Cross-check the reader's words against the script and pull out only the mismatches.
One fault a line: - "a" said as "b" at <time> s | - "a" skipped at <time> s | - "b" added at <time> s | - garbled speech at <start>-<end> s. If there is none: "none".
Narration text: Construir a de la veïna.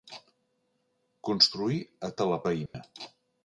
none